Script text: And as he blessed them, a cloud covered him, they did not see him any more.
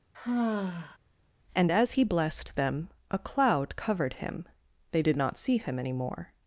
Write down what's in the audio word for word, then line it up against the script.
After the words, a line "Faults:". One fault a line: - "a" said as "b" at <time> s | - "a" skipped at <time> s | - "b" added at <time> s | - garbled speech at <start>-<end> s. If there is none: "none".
And as he blessed them, a cloud covered him, they did not see him any more.
Faults:
none